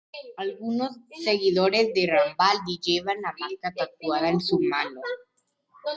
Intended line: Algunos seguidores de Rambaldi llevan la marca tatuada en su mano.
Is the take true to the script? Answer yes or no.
yes